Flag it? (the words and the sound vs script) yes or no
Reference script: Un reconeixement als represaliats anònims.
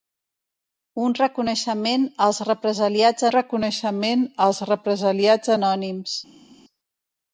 yes